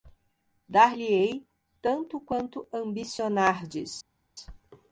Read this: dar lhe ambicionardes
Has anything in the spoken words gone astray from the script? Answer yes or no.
yes